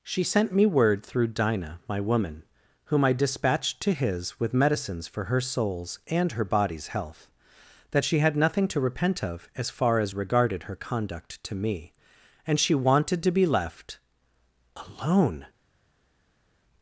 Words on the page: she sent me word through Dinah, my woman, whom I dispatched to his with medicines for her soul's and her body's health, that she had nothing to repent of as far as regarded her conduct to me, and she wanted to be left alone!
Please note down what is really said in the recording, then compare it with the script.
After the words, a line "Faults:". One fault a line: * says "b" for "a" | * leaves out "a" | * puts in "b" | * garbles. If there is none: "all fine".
she sent me word through Dinah, my woman, whom I dispatched to his with medicines for her soul's and her body's health, that she had nothing to repent of as far as regarded her conduct to me, and she wanted to be left alone!
Faults:
all fine